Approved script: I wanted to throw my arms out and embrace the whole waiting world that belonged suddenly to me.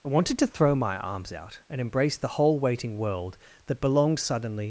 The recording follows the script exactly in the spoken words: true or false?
false